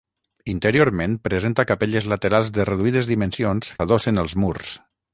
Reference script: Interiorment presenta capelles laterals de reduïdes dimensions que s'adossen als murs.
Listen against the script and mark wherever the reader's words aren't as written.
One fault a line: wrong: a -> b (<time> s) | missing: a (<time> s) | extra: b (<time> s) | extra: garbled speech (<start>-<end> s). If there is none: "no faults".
missing: que (3.7 s)